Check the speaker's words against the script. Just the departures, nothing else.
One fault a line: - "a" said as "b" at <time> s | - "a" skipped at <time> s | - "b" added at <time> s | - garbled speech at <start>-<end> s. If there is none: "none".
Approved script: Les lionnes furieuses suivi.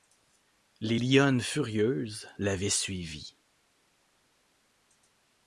- "l'avaient" added at 2.4 s